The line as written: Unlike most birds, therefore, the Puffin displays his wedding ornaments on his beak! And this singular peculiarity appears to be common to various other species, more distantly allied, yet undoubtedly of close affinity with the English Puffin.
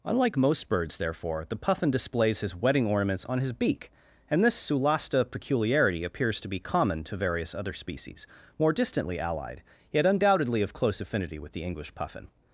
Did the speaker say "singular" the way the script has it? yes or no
no